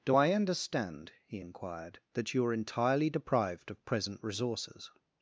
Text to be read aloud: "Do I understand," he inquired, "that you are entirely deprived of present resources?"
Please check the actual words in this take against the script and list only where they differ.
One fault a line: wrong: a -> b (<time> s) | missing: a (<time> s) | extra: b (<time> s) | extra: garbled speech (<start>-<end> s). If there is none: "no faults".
no faults